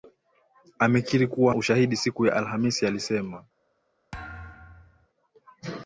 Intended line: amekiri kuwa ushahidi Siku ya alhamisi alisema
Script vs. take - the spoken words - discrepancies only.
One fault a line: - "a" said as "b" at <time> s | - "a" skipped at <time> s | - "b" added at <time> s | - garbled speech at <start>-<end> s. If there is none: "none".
none